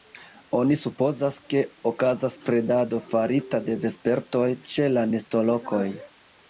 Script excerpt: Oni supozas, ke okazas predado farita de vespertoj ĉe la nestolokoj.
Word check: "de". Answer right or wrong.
right